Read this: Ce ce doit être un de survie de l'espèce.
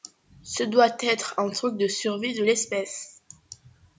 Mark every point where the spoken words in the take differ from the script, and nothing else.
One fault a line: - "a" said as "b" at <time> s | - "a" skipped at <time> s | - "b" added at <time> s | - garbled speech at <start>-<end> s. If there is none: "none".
- "ce" skipped at 0.6 s
- "truc" added at 1.5 s